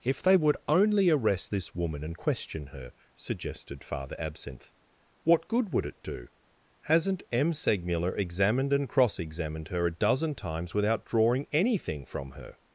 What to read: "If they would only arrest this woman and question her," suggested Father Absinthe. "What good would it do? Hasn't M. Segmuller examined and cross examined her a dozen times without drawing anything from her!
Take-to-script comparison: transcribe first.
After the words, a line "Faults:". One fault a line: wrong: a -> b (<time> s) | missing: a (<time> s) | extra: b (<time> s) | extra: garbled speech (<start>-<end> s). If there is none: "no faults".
"If they would only arrest this woman and question her," suggested Father Absinthe. "What good would it do? Hasn't M. Segmuller examined and cross examined her a dozen times without drawing anything from her!
Faults:
no faults